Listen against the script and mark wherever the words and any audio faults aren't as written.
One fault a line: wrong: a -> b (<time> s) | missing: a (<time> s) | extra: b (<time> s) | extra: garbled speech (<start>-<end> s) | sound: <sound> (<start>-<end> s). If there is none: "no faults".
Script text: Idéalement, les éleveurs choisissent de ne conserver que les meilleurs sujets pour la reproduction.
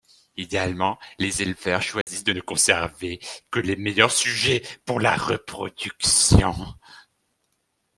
sound: dropout (2.0-2.1 s)